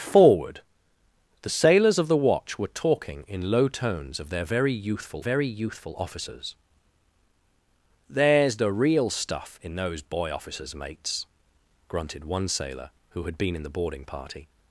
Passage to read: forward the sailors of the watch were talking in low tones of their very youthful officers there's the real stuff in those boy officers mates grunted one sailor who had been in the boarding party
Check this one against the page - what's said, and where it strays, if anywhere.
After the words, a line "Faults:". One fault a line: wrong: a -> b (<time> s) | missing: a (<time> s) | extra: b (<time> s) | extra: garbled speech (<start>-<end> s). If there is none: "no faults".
forward the sailors of the watch were talking in low tones of their very youthful very youthful officers there's the real stuff in those boy officers mates grunted one sailor who had been in the boarding party
Faults:
extra: very youthful (5.2 s)